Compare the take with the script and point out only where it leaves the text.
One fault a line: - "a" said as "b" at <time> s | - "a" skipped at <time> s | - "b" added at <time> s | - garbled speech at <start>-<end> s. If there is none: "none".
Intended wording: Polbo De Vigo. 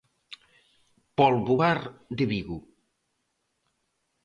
- "Bar" added at 1.6 s